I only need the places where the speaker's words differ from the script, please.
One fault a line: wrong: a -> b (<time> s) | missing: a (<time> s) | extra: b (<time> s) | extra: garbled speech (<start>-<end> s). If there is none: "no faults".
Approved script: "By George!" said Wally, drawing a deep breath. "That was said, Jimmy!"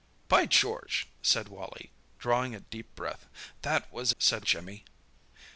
no faults